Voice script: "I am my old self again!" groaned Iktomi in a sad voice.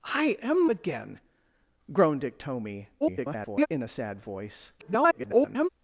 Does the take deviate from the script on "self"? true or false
true